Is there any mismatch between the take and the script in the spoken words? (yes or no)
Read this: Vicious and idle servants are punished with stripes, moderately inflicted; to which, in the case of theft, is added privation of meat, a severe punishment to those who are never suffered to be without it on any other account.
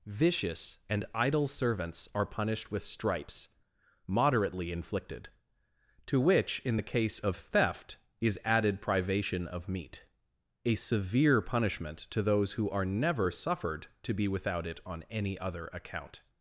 no